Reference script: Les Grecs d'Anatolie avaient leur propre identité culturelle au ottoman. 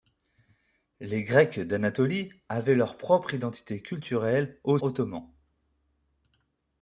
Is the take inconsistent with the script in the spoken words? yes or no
no